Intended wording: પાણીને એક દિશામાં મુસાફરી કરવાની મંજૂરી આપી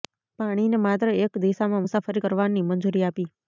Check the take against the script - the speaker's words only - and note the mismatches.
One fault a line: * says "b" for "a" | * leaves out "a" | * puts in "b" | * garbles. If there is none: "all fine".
* puts in "માત્ર"